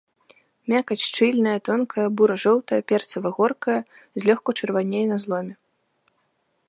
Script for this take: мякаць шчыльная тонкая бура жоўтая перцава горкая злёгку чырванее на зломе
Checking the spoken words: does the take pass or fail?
pass